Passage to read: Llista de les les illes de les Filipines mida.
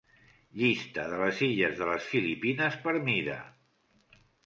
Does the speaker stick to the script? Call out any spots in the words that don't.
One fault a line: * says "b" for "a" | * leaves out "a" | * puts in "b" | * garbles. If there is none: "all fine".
* leaves out "les"
* puts in "per"